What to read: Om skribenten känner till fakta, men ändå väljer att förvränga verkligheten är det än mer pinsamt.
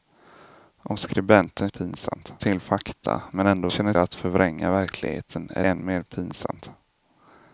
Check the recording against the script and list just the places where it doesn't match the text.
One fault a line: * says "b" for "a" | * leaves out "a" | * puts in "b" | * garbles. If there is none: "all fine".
* says "pinsamt" for "känner"
* says "känner" for "väljer"
* leaves out "det"